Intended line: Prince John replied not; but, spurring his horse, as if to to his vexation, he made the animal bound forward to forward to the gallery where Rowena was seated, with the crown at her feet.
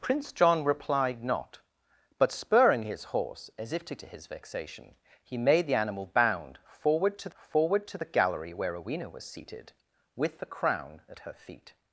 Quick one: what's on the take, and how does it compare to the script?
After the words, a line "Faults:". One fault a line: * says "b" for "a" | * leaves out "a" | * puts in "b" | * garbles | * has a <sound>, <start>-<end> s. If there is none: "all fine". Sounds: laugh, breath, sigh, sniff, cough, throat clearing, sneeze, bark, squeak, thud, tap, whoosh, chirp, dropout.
Prince John replied not; but, spurring his horse, as if to to his vexation, he made the animal bound forward to forward to the gallery where Rowena was seated, with the crown at her feet.
Faults:
all fine